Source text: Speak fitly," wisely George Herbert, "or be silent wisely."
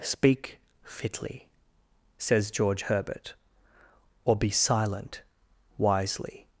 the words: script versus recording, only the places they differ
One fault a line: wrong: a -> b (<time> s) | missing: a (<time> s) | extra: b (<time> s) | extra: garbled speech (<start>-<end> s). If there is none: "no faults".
wrong: wisely -> says (2.2 s)